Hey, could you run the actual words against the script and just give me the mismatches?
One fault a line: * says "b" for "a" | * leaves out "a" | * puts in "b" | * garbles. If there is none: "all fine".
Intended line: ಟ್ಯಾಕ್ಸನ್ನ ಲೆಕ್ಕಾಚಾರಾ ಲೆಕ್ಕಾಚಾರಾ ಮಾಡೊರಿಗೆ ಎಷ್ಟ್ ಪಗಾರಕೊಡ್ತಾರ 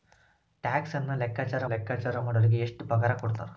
all fine